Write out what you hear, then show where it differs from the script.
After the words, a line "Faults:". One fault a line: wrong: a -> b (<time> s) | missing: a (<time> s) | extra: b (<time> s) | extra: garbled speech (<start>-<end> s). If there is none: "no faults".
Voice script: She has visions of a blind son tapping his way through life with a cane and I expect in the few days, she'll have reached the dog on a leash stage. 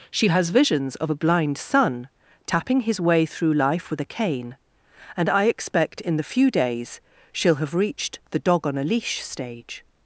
She has visions of a blind son tapping his way through life with a cane and I expect in the few days, she'll have reached the dog on a leash stage.
Faults:
no faults